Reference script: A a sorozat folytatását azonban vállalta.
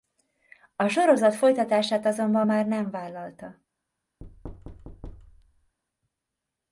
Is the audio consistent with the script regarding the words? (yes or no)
no